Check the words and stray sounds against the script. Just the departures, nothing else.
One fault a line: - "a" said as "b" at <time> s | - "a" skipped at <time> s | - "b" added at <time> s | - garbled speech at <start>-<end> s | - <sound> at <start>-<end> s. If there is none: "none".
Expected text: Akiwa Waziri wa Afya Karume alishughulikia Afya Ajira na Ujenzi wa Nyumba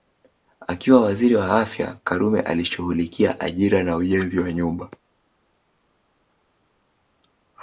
- "Afya" skipped at 3.4 s